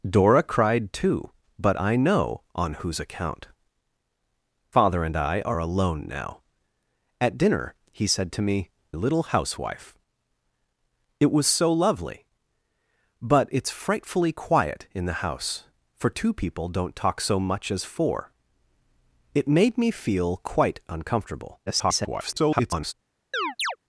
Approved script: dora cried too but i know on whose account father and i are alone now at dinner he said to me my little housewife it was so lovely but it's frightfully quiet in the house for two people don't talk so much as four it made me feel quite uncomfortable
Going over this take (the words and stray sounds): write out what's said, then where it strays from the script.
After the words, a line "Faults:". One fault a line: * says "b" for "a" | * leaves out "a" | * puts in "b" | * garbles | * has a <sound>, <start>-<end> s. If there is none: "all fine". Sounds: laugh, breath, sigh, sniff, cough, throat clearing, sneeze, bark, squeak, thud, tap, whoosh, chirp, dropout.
dora cried too but i know on whose account father and i are alone now at dinner he said to me little housewife it was so lovely but it's frightfully quiet in the house for two people don't talk so much as four it made me feel quite uncomfortable [garbled]
Faults:
* leaves out "my"
* garbles
* has a chirp, 23.3-23.8 s